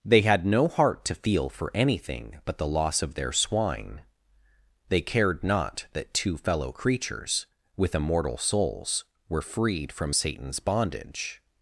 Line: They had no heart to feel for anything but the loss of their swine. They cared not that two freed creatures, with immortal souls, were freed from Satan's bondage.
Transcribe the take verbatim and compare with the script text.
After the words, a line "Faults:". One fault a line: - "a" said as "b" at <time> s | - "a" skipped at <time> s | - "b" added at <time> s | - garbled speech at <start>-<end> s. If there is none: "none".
They had no heart to feel for anything but the loss of their swine. They cared not that two fellow creatures, with immortal souls, were freed from Satan's bondage.
Faults:
- "freed" said as "fellow" at 6.4 s